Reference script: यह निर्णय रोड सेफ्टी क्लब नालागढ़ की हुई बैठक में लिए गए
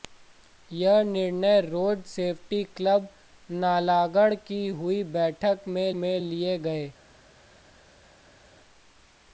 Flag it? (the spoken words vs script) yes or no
yes